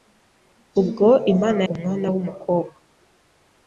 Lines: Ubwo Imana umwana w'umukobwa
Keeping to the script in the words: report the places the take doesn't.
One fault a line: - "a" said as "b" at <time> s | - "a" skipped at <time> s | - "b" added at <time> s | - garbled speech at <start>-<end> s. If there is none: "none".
none